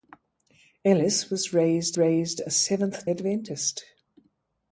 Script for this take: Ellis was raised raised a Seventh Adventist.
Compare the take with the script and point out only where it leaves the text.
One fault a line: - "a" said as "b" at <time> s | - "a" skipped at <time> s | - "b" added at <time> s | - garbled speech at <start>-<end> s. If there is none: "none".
none